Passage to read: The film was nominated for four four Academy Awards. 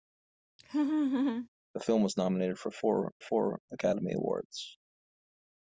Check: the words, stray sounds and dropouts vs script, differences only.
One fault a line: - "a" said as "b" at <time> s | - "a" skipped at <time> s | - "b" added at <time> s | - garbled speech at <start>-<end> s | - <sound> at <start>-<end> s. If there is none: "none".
- laugh at 0.6-1.5 s